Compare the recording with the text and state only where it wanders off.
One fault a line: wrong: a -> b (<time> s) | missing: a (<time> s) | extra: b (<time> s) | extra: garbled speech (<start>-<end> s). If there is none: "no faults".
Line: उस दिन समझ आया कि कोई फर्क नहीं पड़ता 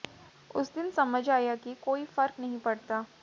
no faults